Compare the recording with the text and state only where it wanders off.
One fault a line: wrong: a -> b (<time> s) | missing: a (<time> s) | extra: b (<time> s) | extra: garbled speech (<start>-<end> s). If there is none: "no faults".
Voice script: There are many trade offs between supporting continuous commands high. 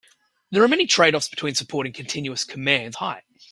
no faults